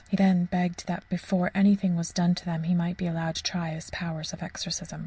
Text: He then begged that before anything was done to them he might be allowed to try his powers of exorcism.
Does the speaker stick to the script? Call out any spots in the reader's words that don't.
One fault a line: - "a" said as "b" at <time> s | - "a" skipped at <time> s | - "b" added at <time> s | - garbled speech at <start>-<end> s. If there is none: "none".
none